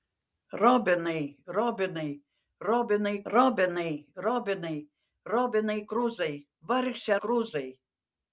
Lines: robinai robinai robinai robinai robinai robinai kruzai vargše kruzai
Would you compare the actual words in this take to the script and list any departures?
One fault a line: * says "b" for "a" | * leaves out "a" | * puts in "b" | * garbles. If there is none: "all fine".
all fine